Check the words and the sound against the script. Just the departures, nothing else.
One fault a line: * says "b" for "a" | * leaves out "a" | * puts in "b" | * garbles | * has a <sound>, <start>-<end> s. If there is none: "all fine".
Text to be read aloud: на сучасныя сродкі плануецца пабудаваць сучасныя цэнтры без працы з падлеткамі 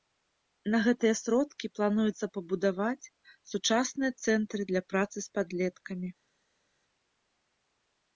* says "гэтыя" for "сучасныя"
* says "для" for "без"